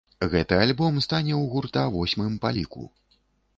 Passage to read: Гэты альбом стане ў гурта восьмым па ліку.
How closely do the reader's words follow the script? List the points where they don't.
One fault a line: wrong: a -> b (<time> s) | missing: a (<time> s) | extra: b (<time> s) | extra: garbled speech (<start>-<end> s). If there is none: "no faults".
no faults